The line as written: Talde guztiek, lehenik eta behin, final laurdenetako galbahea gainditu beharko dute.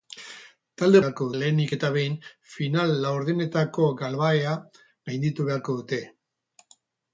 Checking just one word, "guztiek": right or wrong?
wrong